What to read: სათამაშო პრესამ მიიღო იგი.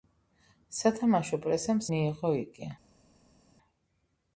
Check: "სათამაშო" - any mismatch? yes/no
no